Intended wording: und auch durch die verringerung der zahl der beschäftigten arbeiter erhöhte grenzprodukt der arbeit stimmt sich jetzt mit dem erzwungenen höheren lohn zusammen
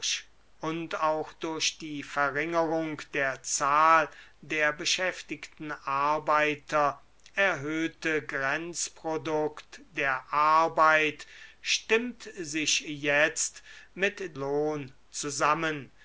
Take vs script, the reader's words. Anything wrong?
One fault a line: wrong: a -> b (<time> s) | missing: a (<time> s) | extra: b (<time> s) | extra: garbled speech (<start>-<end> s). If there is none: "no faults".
missing: dem erzwungenen höheren (14.4 s)